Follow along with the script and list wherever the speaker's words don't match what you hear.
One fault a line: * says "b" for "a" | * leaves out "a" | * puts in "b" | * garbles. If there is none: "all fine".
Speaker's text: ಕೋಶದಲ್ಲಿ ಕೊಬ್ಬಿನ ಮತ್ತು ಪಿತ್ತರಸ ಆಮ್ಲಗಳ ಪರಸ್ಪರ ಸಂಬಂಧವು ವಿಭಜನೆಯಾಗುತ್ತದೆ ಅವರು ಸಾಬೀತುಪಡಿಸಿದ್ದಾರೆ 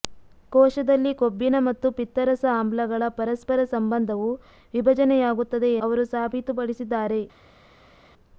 all fine